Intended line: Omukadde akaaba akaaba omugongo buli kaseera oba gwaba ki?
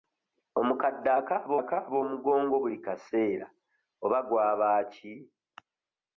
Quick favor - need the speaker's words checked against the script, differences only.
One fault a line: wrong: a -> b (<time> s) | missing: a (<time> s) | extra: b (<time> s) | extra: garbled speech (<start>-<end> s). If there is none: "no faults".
no faults